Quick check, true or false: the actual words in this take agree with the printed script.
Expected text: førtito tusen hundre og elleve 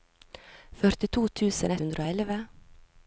true